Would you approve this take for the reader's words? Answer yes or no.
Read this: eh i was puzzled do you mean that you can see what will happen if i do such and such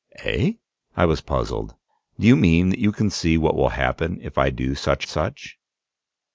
no